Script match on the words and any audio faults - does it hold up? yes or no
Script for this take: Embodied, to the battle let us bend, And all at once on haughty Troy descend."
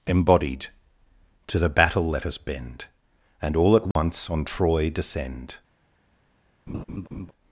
no